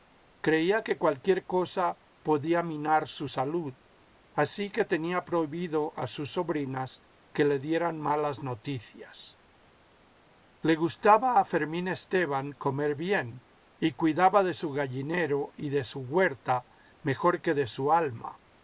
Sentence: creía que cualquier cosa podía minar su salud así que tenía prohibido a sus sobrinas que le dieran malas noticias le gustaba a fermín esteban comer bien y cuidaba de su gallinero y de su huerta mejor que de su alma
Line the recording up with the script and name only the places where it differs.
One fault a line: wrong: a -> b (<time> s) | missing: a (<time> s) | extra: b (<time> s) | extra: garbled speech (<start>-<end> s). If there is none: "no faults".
no faults